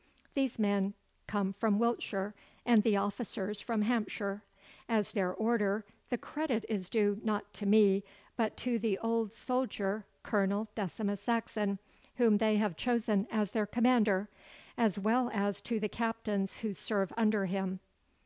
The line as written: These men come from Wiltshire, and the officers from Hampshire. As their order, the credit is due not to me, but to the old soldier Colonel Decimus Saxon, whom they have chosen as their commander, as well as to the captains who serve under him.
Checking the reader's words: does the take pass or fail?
pass